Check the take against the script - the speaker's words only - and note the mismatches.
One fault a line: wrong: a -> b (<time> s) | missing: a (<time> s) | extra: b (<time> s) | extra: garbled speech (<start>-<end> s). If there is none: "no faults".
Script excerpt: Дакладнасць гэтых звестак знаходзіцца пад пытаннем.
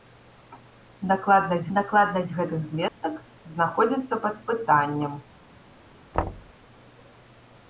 extra: дакладнасць (1.8 s)